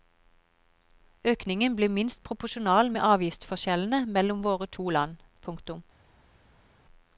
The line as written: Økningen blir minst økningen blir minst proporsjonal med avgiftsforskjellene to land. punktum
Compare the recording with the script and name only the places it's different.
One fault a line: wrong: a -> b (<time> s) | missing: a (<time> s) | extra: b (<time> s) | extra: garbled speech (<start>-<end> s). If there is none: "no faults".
missing: økningen blir minst (2.2 s)
extra: mellom våre (4.2 s)